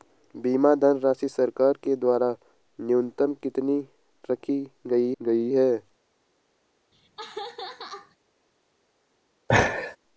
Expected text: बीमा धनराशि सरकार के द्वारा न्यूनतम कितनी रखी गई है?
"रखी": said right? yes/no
yes